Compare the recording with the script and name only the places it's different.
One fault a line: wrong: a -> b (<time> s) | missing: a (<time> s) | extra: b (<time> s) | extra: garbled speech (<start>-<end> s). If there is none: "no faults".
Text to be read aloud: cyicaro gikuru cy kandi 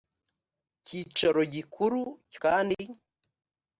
no faults